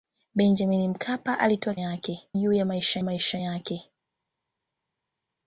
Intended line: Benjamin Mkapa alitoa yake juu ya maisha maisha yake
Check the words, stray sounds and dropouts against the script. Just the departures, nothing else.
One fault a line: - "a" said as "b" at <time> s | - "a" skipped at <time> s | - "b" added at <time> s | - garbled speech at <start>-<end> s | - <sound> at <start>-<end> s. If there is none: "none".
none